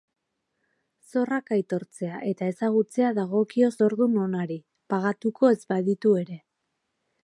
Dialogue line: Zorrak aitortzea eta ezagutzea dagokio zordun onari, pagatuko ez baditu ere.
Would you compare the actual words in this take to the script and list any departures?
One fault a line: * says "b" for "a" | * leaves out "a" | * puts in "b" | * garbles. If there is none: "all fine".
all fine